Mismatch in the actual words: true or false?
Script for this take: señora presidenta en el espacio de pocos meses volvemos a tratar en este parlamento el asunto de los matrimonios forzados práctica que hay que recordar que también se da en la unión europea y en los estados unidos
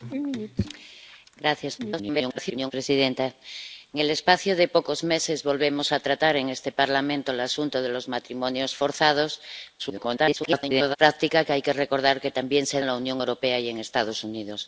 true